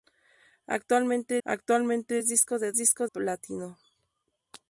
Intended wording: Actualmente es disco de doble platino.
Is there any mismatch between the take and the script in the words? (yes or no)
yes